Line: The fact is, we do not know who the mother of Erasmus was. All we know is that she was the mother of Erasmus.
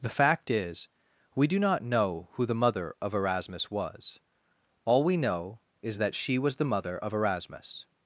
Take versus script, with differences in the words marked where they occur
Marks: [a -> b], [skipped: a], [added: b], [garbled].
The fact is, we do not know who the mother of Erasmus was. All we know is that she was the mother of Erasmus.